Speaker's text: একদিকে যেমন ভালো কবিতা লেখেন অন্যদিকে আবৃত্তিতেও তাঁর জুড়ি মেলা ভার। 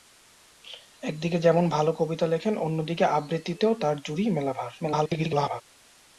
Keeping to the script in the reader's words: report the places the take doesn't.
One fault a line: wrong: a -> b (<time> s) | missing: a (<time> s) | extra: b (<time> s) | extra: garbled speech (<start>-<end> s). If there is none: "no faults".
extra: garbled speech (4.8-5.6 s)